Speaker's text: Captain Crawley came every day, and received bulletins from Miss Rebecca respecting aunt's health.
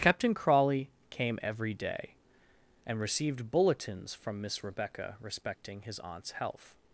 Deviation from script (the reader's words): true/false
true